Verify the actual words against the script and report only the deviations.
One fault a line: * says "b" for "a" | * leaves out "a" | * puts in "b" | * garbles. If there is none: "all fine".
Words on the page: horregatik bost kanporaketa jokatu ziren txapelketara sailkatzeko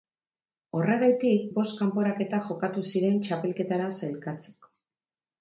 all fine